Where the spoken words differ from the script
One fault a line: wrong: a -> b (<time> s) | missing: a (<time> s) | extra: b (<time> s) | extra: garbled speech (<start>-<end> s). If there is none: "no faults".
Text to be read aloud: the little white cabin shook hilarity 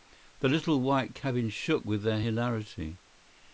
extra: with their (1.9 s)